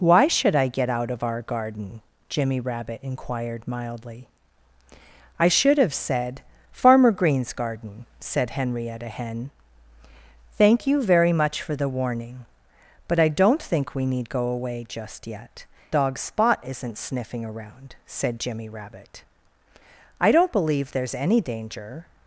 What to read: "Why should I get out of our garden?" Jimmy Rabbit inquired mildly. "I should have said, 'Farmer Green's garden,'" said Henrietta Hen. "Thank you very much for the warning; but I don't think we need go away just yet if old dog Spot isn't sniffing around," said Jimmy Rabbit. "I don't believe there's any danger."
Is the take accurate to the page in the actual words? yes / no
no